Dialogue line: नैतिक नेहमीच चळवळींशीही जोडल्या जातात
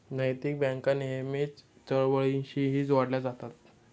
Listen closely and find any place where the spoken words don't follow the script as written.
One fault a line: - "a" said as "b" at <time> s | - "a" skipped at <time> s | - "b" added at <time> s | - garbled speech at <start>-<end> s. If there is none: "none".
- "बँका" added at 0.6 s